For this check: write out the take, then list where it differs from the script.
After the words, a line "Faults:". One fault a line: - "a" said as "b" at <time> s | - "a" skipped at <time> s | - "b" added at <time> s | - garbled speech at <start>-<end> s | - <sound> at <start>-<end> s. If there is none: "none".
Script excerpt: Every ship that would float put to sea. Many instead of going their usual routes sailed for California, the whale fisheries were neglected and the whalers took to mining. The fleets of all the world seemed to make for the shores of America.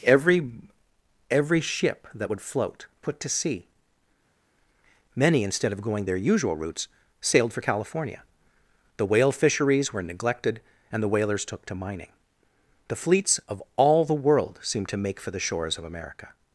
Every every ship that would float put to sea. Many instead of going their usual routes sailed for California, the whale fisheries were neglected and the whalers took to mining. The fleets of all the world seemed to make for the shores of America.
Faults:
- "every" added at 1.3 s